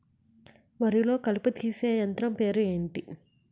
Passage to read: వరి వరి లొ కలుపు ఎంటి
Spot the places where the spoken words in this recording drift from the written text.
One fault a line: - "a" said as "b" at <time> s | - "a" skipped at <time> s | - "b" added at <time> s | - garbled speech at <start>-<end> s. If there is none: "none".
- "వరి" skipped at 1.0 s
- "తీసే యంత్రం పేరు" added at 1.5 s